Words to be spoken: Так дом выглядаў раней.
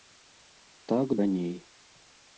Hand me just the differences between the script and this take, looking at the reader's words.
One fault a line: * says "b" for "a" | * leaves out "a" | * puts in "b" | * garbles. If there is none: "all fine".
* leaves out "дом выглядаў"